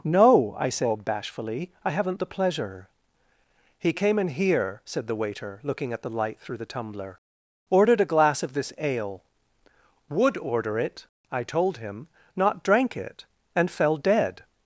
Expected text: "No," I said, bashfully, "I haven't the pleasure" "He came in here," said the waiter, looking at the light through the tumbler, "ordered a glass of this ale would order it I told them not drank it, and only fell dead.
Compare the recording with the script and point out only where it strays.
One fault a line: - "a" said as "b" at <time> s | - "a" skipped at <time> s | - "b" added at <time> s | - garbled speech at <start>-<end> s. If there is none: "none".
- "them" said as "him" at 11.8 s
- "only" skipped at 13.7 s